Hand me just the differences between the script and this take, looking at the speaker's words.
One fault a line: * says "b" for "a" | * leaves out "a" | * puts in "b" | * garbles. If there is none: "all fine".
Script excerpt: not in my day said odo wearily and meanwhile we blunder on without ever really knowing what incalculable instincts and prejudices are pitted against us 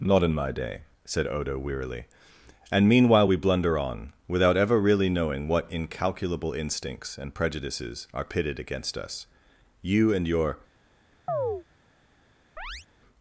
* puts in "you and your"